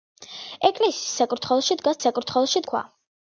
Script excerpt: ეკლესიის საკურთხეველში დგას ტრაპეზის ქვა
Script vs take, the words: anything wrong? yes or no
yes